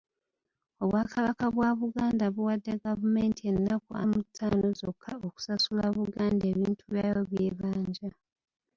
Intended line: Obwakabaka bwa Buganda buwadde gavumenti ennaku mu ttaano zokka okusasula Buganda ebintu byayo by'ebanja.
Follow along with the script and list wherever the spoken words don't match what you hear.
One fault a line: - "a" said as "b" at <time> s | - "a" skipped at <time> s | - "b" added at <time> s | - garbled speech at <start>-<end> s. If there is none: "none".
none